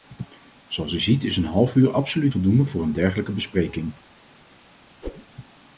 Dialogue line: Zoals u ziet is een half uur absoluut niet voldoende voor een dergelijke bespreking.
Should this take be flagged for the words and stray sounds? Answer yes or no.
yes